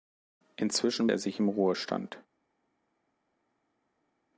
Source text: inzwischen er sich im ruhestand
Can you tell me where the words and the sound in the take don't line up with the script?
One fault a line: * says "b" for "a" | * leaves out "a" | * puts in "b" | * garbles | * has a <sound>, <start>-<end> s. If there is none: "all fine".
all fine